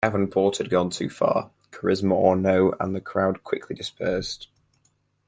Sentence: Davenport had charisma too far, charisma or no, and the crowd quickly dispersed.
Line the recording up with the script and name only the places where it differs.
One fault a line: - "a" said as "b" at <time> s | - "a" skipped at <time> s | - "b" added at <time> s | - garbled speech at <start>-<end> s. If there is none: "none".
- "charisma" said as "gone" at 0.7 s